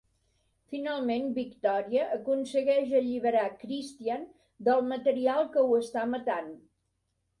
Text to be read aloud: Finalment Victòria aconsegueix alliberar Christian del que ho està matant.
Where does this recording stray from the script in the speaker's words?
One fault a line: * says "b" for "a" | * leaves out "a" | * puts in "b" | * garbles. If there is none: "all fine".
* puts in "material"